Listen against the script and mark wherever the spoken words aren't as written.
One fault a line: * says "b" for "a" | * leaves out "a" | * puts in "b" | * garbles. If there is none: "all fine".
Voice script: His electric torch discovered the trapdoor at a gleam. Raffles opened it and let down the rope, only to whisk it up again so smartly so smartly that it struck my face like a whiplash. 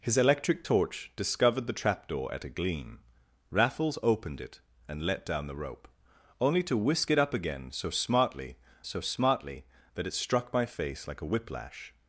all fine